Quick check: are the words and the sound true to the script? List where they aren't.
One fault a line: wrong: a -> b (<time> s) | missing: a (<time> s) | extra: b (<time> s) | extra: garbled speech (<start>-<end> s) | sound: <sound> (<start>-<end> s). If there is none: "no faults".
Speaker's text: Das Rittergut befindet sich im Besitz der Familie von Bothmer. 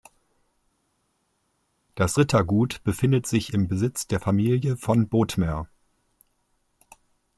no faults